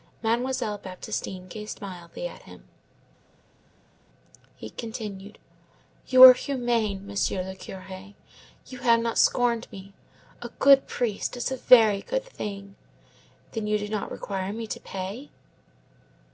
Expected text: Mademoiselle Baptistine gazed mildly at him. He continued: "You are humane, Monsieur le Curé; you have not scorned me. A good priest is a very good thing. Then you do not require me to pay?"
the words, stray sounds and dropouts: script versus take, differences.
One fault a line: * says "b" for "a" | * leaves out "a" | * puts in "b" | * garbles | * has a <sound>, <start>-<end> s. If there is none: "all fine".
all fine